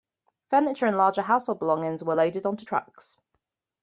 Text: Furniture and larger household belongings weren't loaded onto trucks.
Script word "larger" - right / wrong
right